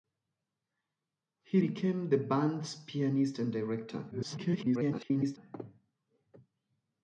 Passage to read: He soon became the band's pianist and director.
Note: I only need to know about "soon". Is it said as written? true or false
false